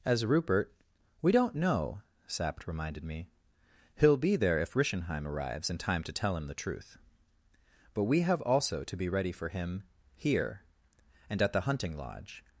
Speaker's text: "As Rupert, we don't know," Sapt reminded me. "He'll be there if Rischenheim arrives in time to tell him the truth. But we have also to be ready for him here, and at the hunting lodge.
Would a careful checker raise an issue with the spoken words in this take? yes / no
no